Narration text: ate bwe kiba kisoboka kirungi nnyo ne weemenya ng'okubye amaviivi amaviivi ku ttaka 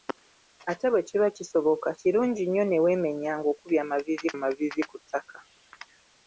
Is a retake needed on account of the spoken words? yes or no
no